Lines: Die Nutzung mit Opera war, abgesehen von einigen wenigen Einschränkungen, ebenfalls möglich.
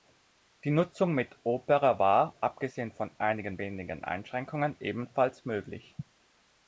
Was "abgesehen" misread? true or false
false